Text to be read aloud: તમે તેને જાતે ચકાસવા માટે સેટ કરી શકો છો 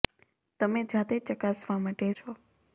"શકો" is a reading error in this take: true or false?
true